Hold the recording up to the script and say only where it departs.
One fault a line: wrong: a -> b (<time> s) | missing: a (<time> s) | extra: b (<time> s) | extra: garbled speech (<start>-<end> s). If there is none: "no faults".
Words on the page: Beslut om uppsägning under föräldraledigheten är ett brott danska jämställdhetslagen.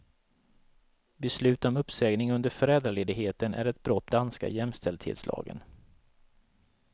no faults